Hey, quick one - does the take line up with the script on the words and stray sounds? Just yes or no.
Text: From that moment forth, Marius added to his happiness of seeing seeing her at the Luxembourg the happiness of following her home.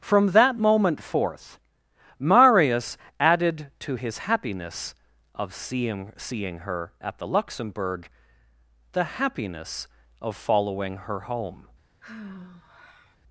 no